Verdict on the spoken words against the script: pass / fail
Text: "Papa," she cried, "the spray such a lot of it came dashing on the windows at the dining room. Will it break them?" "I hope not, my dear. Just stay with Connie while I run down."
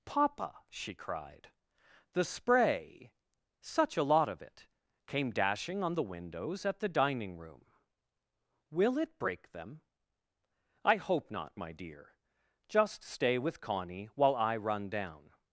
pass